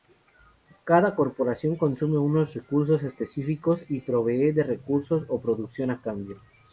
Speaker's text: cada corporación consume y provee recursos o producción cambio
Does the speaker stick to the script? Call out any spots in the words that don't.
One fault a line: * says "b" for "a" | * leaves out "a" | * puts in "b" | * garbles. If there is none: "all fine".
* puts in "unos recursos específicos"
* puts in "de"
* puts in "a"